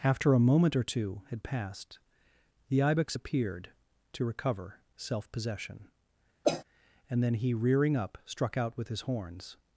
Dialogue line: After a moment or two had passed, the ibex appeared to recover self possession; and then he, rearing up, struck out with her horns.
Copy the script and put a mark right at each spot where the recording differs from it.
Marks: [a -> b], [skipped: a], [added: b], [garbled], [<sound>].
After a moment or two had passed, the ibex appeared to recover self possession; [cough] and then he, rearing up, struck out with [her -> his] horns.